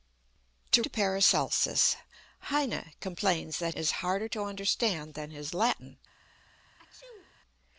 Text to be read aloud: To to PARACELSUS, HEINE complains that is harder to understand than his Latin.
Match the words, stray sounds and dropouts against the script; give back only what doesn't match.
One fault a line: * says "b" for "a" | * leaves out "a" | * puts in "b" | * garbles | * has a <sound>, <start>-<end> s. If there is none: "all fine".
* has a sneeze, 6.8-7.4 s